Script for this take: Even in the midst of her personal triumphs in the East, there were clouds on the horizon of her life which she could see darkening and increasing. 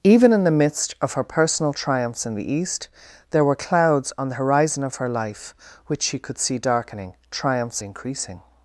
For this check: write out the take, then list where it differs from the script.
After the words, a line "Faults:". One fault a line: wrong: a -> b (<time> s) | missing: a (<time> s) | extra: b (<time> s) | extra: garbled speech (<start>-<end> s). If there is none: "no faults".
Even in the midst of her personal triumphs in the East, there were clouds on the horizon of her life which she could see darkening triumphs increasing.
Faults:
wrong: and -> triumphs (7.3 s)